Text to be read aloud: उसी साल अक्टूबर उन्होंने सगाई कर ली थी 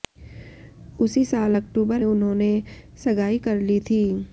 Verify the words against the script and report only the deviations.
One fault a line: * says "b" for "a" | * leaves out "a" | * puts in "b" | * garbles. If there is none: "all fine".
all fine